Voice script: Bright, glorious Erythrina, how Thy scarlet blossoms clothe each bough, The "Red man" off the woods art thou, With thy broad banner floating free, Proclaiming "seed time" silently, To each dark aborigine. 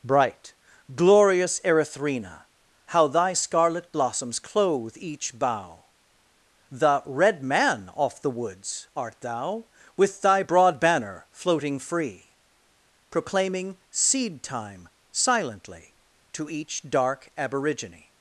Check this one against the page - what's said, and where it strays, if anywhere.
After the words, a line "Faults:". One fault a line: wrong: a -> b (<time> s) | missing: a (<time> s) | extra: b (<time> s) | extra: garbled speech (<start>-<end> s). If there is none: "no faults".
Bright, glorious Erythrina, how Thy scarlet blossoms clothe each bough, The "Red man" off the woods art thou, With thy broad banner floating free, Proclaiming "seed time" silently, To each dark aborigine.
Faults:
no faults